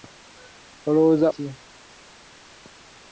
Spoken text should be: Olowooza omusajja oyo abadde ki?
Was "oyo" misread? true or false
true